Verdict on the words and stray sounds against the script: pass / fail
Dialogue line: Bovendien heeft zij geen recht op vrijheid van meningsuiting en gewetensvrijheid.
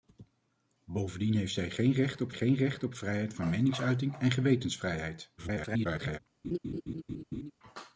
fail